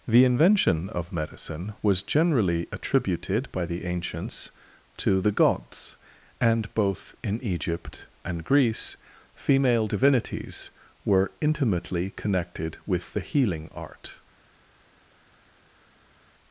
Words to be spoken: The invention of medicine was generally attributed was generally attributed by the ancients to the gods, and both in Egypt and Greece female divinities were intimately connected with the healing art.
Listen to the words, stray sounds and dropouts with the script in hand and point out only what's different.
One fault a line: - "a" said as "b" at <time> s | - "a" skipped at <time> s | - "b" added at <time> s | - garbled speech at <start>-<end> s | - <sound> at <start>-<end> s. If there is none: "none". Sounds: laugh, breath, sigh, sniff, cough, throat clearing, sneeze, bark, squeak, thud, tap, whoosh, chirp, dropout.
- "was generally attributed" skipped at 3.5 s